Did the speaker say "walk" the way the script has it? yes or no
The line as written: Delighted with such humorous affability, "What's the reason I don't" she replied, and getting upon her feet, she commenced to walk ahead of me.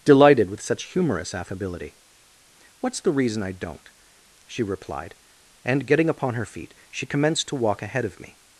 yes